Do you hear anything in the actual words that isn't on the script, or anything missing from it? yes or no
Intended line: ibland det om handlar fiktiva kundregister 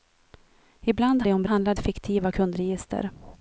no